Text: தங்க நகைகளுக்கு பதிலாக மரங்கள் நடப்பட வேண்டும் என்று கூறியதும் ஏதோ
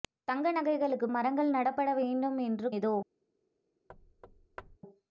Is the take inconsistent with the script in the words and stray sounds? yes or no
yes